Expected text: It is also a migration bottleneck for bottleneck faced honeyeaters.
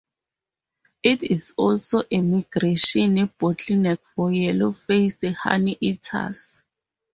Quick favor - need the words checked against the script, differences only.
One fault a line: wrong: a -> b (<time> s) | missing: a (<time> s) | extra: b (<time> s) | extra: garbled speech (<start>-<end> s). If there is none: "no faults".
wrong: bottleneck -> yellow (4.3 s)